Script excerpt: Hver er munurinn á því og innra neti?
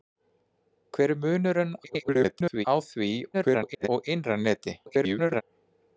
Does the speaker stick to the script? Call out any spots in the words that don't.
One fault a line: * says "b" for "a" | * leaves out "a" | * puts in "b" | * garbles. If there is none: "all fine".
* garbles
* garbles
* garbles